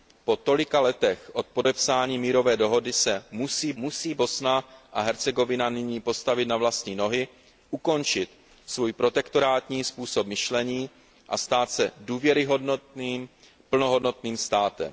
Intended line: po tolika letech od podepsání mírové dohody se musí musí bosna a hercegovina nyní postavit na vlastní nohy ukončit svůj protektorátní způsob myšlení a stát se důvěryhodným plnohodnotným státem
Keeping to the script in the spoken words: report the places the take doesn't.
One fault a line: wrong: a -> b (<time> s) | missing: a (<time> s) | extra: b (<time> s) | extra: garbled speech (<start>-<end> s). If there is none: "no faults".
no faults